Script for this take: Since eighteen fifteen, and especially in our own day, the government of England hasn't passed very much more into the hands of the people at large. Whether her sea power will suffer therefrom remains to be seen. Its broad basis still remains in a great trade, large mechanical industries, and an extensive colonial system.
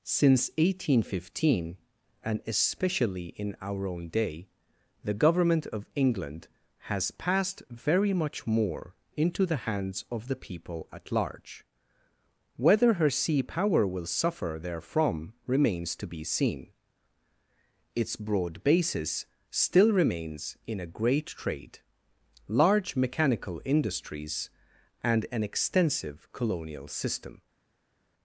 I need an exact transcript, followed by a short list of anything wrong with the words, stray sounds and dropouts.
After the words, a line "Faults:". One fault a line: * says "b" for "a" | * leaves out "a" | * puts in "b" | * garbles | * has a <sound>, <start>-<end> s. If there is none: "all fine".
Since eighteen fifteen, and especially in our own day, the government of England has passed very much more into the hands of the people at large. Whether her sea power will suffer therefrom remains to be seen. Its broad basis still remains in a great trade, large mechanical industries, and an extensive colonial system.
Faults:
* says "has" for "hasn't"